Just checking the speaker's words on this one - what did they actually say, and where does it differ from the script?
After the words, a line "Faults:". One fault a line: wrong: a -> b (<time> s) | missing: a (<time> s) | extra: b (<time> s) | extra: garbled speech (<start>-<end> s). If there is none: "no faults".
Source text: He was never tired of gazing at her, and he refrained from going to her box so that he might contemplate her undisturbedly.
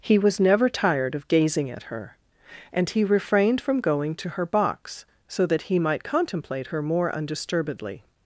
He was never tired of gazing at her, and he refrained from going to her box so that he might contemplate her more undisturbedly.
Faults:
extra: more (6.8 s)